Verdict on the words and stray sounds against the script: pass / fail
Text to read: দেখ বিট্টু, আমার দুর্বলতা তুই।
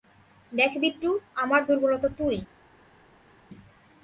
pass